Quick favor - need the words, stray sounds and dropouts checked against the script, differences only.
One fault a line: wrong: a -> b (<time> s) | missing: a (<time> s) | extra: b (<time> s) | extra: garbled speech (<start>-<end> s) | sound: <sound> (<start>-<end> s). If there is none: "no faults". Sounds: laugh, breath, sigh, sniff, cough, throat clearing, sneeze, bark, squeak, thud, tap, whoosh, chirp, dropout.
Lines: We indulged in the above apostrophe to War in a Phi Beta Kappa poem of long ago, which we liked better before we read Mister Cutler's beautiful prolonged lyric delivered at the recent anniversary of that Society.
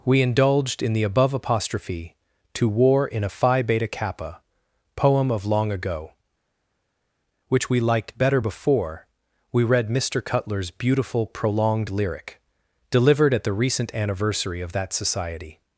no faults